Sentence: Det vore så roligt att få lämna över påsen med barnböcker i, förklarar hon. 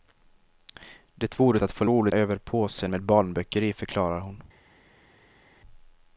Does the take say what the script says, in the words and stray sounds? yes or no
no